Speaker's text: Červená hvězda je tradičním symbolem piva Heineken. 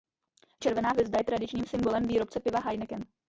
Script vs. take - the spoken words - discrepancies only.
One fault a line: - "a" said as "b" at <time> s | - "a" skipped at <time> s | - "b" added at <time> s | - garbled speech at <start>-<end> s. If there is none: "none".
- "výrobce" added at 2.0 s